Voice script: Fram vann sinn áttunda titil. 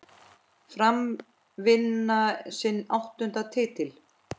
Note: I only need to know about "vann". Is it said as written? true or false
true